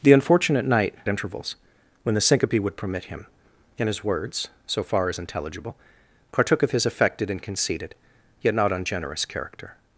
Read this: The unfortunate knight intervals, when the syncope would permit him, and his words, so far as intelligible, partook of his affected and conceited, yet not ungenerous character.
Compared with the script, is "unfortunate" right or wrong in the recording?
right